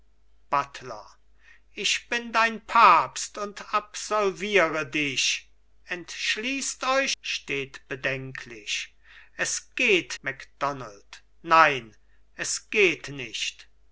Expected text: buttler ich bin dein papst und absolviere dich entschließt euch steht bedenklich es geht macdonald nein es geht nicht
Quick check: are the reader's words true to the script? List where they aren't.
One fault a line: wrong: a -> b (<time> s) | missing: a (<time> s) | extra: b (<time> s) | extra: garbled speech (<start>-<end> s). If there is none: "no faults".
no faults